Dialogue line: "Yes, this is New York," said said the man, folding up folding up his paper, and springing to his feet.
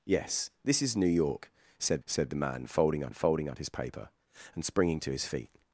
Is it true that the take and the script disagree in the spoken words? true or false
false